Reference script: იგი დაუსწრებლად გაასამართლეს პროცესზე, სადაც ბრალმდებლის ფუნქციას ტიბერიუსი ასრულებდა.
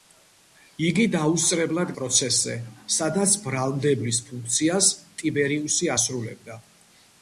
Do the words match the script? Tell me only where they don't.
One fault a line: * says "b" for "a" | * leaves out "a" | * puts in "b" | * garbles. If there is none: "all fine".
* leaves out "გაასამართლეს"